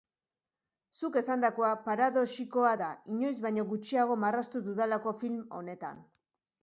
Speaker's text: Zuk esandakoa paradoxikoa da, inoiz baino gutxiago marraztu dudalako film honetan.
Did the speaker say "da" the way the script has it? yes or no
yes